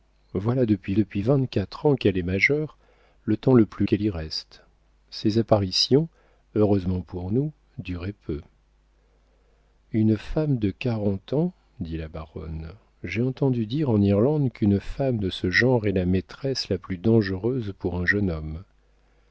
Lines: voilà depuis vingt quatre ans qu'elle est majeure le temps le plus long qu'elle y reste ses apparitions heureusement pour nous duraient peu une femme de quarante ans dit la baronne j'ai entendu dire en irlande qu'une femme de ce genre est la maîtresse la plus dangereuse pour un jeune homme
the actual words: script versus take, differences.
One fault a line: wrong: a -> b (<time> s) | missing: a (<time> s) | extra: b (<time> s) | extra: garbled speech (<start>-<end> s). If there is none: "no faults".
extra: depuis (0.9 s)
missing: long (3.9 s)